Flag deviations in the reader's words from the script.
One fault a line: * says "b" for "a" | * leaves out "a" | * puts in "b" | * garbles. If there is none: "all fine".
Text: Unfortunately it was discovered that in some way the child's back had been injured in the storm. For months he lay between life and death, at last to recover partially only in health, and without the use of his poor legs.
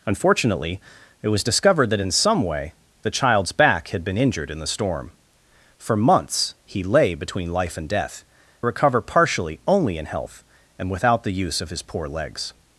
* leaves out "at last to"